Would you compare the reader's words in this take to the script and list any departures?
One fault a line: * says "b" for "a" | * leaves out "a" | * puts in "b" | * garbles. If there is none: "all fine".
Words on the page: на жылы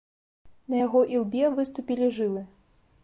* puts in "яго ілбе выступілі"